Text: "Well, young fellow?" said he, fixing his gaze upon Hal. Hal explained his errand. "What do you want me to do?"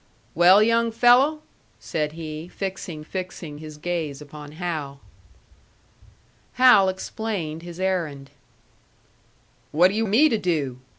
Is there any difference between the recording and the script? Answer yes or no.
yes